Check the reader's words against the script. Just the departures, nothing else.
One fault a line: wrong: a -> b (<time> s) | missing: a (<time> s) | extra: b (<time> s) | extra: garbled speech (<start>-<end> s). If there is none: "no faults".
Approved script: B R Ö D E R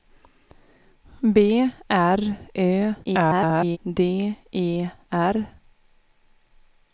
extra: garbled speech (3.0-3.8 s)